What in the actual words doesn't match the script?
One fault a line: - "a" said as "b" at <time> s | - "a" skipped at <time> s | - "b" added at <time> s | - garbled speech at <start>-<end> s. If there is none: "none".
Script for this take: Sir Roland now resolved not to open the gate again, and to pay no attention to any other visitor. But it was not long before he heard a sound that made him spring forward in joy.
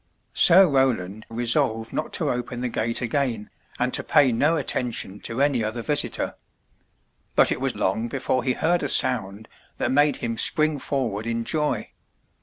- "now" skipped at 1.3 s
- "not" skipped at 7.8 s